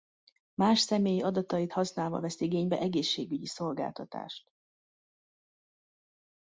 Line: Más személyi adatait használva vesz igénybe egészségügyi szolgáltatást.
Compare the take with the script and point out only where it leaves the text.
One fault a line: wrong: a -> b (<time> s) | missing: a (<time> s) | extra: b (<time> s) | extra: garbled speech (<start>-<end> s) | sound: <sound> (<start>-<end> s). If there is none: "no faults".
no faults